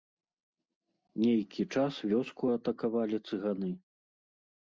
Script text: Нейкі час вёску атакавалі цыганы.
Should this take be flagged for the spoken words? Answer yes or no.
no